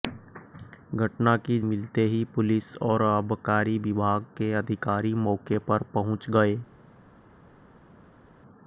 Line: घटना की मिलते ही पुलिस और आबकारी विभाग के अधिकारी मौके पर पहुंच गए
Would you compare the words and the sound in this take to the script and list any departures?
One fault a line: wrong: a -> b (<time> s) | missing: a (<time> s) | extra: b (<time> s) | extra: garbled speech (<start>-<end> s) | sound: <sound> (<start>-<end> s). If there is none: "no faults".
no faults